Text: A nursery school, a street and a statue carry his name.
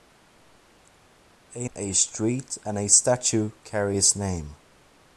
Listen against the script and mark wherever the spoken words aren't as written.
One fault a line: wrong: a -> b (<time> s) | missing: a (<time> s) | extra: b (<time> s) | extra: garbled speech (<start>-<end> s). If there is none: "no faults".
missing: nursery school (1.7 s)